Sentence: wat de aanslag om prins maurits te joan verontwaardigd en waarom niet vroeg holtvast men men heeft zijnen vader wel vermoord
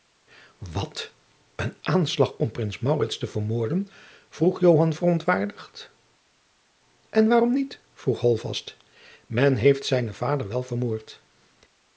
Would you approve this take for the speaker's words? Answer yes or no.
no